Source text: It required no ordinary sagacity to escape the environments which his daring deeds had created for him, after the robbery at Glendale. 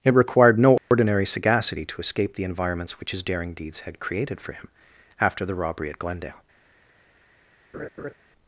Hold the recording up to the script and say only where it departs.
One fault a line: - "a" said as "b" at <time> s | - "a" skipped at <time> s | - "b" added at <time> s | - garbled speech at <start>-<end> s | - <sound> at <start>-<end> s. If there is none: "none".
- dropout at 0.8-0.9 s
- laugh at 7.7-8.1 s